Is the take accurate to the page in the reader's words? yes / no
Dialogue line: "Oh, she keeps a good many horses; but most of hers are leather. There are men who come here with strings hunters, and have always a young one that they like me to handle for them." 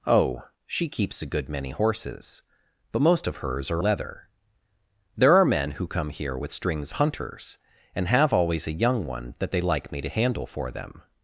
yes